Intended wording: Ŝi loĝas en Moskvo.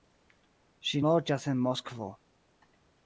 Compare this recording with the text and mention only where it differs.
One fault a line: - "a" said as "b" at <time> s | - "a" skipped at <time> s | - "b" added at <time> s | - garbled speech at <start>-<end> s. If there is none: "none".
none